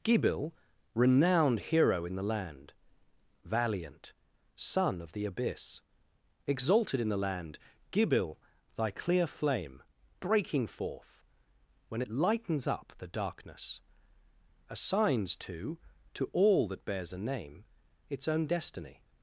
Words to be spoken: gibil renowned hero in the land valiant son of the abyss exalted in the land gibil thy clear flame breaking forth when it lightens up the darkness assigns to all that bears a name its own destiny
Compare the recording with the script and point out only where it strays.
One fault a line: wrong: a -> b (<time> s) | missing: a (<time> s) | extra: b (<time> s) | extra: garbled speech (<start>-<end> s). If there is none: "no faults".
extra: to (16.1 s)